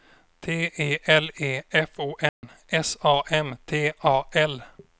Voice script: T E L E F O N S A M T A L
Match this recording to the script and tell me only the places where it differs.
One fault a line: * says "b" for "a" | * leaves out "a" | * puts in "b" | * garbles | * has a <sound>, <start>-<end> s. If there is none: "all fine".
* has a dropout, 2.3-2.4 s